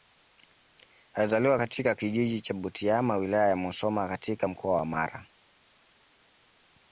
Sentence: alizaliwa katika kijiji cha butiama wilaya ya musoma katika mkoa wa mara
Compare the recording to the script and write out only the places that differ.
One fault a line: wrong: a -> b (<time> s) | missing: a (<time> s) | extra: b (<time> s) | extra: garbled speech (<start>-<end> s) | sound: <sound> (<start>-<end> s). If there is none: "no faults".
no faults